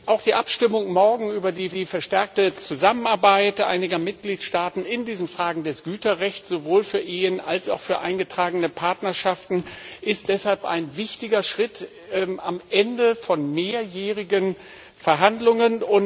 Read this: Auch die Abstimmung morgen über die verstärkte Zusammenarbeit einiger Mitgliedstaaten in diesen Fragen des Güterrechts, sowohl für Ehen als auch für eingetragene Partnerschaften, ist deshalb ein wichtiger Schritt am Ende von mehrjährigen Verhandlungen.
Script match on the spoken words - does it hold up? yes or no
no